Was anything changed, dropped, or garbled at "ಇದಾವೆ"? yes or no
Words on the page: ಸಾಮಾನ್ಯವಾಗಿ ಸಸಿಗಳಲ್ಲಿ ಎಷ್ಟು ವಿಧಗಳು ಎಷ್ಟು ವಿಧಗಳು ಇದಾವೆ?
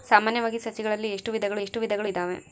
no